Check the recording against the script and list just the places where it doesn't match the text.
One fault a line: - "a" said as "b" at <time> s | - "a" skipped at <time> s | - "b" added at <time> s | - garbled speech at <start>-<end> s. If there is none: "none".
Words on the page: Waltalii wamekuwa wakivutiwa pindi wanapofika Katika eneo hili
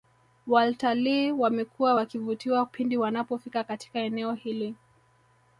none